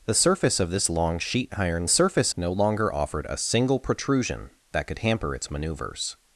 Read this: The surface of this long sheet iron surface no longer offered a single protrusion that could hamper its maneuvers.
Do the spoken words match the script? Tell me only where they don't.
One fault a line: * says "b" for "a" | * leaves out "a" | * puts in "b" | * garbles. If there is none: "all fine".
all fine